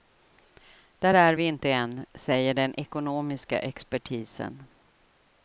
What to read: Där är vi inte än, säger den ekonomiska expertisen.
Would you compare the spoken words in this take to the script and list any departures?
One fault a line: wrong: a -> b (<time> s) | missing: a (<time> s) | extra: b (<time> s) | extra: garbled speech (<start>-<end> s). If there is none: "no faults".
no faults